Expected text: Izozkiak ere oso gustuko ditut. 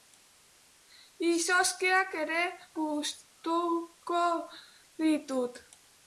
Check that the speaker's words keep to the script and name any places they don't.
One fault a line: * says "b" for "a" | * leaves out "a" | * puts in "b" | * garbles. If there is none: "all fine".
* leaves out "oso"